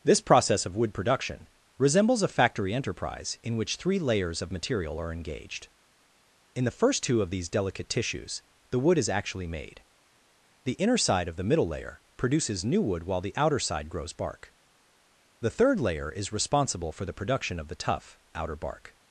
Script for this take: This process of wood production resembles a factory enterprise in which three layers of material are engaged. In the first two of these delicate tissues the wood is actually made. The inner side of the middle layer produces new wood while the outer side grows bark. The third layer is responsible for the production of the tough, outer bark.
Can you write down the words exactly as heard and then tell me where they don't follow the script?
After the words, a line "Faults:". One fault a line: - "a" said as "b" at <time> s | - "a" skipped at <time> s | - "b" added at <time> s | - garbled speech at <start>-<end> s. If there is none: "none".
This process of wood production resembles a factory enterprise in which three layers of material are engaged. In the first two of these delicate tissues the wood is actually made. The inner side of the middle layer produces new wood while the outer side grows bark. The third layer is responsible for the production of the tough, outer bark.
Faults:
none